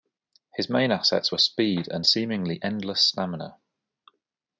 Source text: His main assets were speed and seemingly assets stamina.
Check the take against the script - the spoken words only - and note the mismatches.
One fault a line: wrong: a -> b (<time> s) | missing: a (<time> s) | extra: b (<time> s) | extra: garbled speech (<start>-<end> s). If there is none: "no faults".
wrong: assets -> endless (2.6 s)